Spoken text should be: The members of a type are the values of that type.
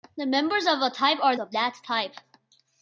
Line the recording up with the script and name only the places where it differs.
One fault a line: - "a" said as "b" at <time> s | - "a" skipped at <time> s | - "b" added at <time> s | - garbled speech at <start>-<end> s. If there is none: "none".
- "the values" skipped at 1.4 s